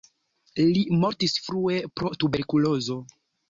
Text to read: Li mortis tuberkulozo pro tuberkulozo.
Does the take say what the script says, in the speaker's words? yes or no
no